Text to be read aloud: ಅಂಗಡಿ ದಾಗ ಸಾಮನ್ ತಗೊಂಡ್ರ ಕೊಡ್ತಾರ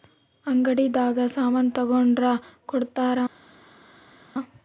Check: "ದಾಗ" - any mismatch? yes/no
no